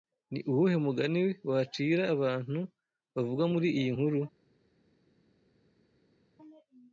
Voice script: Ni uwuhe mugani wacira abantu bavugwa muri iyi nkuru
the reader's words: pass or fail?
pass